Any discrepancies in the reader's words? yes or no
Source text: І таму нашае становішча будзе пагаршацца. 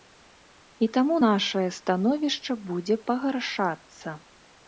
no